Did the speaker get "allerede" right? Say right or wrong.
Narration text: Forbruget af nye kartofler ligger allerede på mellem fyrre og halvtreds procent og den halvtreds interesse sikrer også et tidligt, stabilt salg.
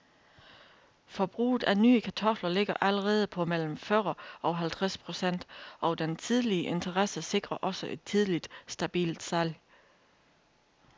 right